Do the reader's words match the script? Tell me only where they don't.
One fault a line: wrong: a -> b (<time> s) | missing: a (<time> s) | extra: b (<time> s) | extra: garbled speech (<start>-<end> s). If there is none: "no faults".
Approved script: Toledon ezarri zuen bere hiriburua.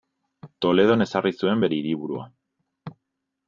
no faults